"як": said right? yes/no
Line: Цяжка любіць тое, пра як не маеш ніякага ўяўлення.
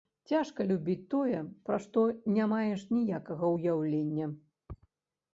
no